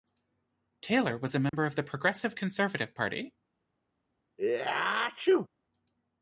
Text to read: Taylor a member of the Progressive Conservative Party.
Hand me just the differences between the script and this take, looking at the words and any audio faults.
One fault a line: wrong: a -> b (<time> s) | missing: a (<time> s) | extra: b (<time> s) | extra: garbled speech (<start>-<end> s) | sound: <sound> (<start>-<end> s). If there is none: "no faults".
extra: was (1.1 s)
sound: dropout (1.5-1.5 s)
sound: sneeze (4.4-5.5 s)